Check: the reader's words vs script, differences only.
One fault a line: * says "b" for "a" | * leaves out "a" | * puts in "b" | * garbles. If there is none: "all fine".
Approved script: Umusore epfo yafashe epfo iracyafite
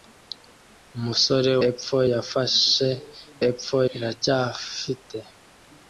all fine